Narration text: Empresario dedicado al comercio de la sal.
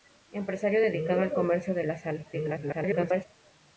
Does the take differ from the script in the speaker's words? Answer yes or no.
yes